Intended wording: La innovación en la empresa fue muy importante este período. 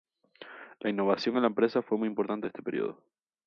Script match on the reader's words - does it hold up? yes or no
yes